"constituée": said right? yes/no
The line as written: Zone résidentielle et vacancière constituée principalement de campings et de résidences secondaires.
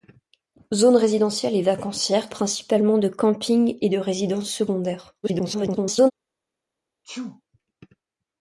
no